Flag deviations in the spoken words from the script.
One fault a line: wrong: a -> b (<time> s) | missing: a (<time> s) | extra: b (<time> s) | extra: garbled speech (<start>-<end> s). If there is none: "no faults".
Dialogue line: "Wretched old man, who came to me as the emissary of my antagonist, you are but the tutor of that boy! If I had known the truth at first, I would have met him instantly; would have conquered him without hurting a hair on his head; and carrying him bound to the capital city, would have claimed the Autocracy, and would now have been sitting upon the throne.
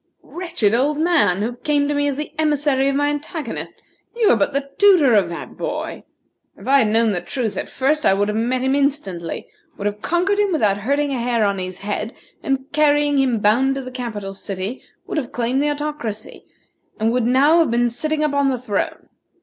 no faults